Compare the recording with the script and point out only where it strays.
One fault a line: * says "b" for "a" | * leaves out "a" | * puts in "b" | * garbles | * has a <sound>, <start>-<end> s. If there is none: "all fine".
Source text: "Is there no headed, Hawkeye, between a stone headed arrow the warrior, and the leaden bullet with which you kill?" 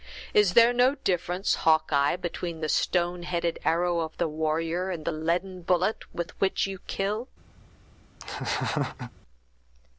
* says "difference" for "headed"
* says "the" for "a"
* puts in "of"
* has a laugh, 8.2-9.1 s